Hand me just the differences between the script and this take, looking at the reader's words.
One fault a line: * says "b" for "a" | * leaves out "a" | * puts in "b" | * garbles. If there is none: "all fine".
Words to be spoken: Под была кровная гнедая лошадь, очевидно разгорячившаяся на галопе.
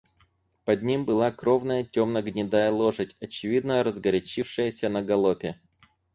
* puts in "ним"
* puts in "темно"